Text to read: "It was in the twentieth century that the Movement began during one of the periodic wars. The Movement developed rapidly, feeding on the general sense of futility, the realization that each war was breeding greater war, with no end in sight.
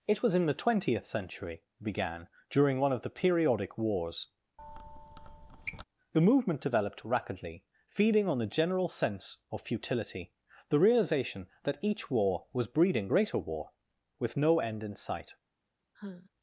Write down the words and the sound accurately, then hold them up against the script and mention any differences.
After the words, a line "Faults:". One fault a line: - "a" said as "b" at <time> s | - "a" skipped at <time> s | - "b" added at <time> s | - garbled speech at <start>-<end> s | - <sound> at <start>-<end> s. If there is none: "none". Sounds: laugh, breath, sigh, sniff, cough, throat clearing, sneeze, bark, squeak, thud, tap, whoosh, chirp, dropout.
"It was in the twentieth century began during one of the periodic wars. The Movement developed rapidly, feeding on the general sense of futility, the realization that each war was breeding greater war, with no end in sight.
Faults:
- "that the Movement" skipped at 1.6 s
- squeak at 4.6-5.8 s
- sigh at 15.9-16.3 s